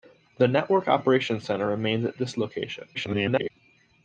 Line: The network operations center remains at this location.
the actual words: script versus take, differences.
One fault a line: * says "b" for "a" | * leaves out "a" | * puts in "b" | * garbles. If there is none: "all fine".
* garbles